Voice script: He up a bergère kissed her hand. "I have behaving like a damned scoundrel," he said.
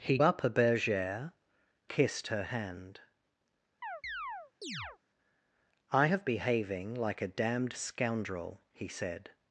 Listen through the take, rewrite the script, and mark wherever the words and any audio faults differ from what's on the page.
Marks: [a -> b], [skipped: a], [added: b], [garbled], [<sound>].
He up a bergère kissed her hand. [chirp] "I have behaving like a damned scoundrel," he said.